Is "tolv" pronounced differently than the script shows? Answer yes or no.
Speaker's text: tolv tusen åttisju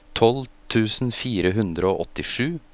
no